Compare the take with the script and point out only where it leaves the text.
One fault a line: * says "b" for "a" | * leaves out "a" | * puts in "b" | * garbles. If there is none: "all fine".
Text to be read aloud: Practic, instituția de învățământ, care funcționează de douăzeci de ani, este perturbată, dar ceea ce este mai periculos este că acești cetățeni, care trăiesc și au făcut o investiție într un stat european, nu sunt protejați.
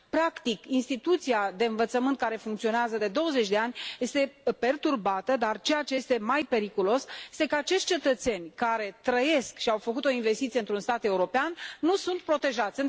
all fine